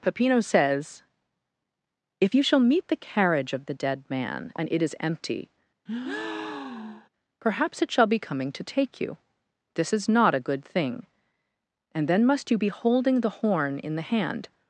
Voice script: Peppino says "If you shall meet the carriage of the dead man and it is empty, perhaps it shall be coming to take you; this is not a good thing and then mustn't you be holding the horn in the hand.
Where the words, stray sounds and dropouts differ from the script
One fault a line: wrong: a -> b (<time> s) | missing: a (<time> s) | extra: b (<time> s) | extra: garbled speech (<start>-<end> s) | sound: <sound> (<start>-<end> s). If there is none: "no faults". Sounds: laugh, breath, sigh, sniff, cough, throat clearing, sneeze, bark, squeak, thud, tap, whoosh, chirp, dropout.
sound: breath (5.9-7.1 s)
wrong: mustn't -> must (12.3 s)